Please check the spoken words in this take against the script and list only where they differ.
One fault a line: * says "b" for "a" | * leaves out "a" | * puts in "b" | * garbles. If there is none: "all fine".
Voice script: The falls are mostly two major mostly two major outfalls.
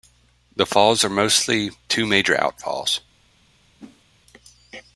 * leaves out "mostly two major"